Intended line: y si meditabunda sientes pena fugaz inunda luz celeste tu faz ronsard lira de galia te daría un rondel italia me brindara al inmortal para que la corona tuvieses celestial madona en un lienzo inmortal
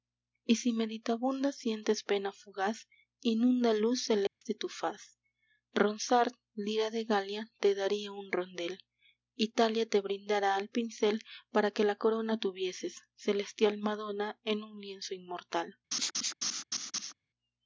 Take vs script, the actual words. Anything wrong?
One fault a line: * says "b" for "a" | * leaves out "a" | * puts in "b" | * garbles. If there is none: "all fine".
* says "te" for "me"
* says "pincel" for "inmortal"